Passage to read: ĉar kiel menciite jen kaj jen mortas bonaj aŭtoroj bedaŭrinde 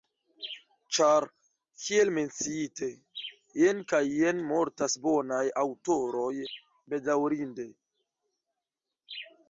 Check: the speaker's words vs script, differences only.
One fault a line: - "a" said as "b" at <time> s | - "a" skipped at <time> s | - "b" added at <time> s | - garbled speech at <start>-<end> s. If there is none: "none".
none